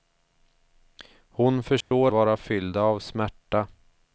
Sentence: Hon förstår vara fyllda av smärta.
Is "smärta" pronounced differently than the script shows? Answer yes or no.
no